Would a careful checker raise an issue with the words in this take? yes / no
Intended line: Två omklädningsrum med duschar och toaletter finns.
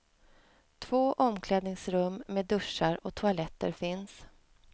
no